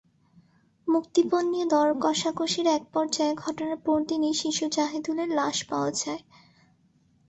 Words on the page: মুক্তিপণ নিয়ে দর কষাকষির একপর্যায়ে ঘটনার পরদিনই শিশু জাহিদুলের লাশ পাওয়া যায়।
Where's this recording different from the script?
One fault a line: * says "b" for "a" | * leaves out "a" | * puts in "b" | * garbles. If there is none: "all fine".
all fine